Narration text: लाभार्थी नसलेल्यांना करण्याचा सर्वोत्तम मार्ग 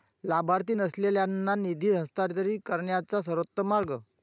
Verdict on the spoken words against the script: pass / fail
fail